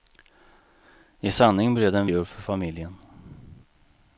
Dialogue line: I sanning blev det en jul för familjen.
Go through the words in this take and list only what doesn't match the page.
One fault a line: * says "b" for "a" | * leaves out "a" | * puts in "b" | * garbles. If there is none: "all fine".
all fine